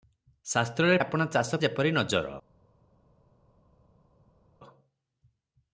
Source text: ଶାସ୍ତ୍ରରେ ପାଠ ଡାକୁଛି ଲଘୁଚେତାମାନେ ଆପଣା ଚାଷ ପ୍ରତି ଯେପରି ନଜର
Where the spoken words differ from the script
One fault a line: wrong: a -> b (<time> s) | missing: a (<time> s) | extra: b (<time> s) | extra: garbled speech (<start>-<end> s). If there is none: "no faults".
missing: ପାଠ ଡାକୁଛି ଲଘୁଚେତାମାନେ (1.0 s)
missing: ପ୍ରତି (1.6 s)